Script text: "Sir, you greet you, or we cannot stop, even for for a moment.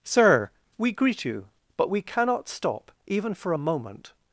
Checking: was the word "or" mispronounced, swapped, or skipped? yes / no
yes